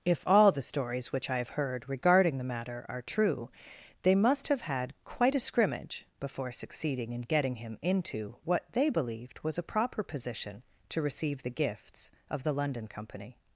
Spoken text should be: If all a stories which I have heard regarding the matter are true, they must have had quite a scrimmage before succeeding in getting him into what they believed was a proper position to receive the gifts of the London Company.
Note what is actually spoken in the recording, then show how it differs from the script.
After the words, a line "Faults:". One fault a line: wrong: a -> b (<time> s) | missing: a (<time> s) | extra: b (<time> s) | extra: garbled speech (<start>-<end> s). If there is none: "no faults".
If all the stories which I have heard regarding the matter are true, they must have had quite a scrimmage before succeeding in getting him into what they believed was a proper position to receive the gifts of the London Company.
Faults:
wrong: a -> the (0.5 s)